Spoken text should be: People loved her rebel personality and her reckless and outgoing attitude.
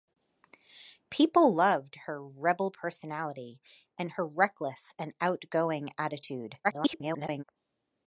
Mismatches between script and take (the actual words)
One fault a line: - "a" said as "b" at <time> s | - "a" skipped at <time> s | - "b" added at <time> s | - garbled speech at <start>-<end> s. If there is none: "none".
- garbled speech at 6.6-7.4 s